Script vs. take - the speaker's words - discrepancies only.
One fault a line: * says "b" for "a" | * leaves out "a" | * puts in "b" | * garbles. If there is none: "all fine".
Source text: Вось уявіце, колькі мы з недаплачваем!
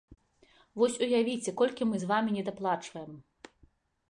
* puts in "вамі"